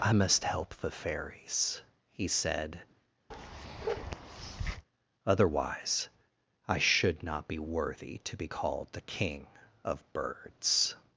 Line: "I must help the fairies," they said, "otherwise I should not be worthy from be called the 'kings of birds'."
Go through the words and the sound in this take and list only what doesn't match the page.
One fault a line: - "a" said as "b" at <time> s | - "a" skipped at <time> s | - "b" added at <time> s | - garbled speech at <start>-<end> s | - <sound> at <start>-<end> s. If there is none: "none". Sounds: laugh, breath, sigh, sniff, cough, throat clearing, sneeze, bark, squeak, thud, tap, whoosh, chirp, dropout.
- "they" said as "he" at 2.1 s
- bark at 3.3-4.9 s
- "from" said as "to" at 8.2 s
- "kings" said as "king" at 9.0 s